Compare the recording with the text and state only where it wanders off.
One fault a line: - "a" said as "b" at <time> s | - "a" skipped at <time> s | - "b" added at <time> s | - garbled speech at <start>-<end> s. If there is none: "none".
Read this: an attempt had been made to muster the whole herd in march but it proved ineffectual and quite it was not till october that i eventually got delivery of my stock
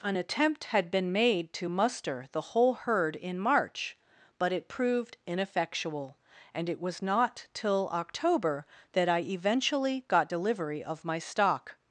- "quite" skipped at 6.7 s